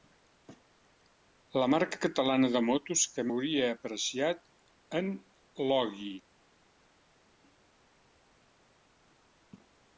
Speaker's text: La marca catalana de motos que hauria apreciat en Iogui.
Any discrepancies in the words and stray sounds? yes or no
no